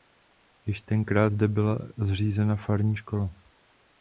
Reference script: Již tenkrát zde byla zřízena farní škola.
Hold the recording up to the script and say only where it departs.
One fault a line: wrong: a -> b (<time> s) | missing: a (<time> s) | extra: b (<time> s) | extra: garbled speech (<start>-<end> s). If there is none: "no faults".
no faults